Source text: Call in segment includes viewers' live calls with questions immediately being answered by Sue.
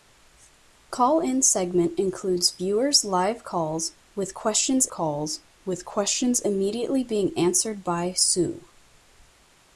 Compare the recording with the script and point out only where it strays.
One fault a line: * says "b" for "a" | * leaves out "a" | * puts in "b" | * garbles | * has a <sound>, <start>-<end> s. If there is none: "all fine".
* puts in "calls with questions"